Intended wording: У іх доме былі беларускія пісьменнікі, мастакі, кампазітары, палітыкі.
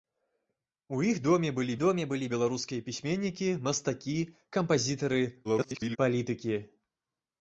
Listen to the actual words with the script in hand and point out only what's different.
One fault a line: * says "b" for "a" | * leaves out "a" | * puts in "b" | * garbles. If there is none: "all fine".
* puts in "доме былі"
* garbles